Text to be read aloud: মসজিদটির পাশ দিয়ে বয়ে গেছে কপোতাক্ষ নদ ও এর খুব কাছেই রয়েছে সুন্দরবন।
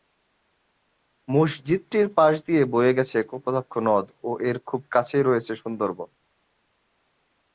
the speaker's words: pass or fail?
pass